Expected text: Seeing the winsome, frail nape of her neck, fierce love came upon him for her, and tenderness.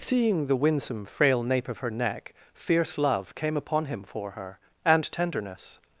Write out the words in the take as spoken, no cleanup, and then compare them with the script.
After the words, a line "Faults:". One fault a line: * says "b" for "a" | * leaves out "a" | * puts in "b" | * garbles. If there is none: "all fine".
Seeing the winsome, frail nape of her neck, fierce love came upon him for her, and tenderness.
Faults:
all fine